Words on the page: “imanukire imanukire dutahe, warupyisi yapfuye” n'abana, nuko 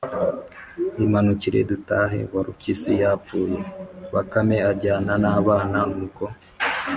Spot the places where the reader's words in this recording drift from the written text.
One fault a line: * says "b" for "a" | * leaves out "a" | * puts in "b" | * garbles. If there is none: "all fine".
* leaves out "imanukire"
* puts in "bakame ajyana"